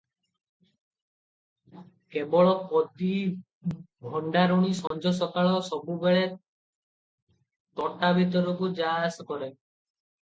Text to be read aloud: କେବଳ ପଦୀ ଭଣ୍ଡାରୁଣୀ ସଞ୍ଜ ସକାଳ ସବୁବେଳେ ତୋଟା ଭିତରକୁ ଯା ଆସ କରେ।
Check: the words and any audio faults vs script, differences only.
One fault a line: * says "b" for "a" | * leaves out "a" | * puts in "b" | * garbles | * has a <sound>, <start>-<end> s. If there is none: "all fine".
* has a dropout, 4.9-4.9 s